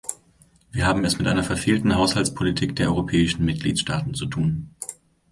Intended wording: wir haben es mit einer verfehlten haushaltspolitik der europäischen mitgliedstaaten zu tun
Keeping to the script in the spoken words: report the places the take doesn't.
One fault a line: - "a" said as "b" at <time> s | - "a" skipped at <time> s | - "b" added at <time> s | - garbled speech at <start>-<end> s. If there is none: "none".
none